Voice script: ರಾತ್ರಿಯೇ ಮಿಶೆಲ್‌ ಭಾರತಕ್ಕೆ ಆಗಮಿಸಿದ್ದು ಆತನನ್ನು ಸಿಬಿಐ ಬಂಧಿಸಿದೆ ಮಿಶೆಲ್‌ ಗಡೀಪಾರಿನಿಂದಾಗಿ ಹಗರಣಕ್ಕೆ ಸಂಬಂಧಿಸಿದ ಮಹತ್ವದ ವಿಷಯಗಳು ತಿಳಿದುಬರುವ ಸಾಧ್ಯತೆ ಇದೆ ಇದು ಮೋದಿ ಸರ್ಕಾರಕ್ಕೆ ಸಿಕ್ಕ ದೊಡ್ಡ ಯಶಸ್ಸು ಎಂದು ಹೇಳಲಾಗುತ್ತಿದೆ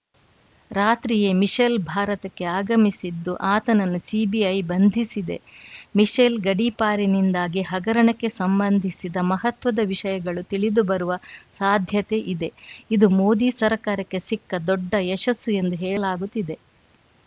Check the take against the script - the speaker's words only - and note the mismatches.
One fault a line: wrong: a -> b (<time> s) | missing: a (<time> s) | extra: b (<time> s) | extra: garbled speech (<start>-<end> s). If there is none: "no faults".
no faults